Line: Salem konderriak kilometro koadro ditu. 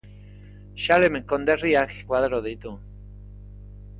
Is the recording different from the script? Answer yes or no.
yes